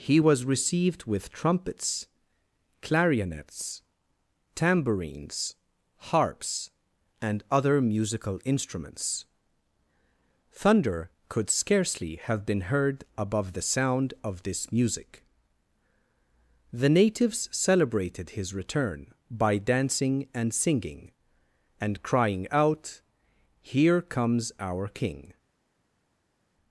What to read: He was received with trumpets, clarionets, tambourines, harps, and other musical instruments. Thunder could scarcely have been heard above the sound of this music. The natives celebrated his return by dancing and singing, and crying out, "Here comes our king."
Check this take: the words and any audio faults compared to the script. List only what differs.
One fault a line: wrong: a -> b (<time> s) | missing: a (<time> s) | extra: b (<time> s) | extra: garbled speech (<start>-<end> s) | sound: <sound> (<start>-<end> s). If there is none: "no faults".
no faults